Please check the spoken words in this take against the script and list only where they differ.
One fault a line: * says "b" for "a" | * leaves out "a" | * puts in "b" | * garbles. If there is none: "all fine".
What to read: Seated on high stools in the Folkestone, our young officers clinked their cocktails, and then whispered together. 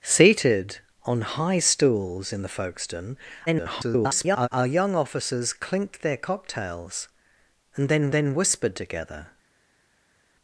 * garbles
* puts in "then"